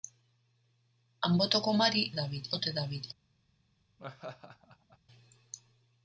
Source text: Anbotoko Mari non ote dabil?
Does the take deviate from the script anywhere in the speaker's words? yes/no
yes